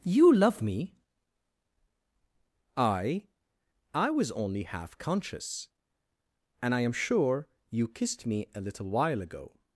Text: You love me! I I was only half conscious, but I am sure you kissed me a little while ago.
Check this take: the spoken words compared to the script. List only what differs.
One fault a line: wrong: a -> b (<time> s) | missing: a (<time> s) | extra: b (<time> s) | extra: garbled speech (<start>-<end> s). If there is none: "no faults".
wrong: but -> and (6.6 s)